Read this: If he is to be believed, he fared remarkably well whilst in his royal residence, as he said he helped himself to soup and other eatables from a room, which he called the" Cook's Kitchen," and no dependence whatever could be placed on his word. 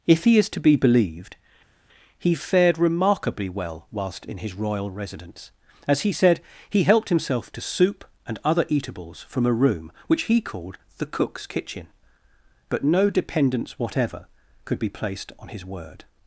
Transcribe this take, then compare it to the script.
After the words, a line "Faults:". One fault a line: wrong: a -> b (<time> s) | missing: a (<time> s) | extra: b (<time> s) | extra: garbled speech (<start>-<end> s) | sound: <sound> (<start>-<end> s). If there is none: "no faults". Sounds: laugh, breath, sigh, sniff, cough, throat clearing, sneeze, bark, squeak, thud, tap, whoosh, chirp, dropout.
If he is to be believed, he fared remarkably well whilst in his royal residence, as he said he helped himself to soup and other eatables from a room, which he called the" Cook's Kitchen," but no dependence whatever could be placed on his word.
Faults:
wrong: and -> but (12.7 s)